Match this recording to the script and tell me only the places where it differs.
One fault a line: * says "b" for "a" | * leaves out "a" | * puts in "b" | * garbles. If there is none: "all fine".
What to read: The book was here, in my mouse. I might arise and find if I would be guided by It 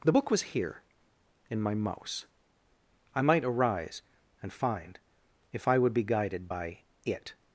all fine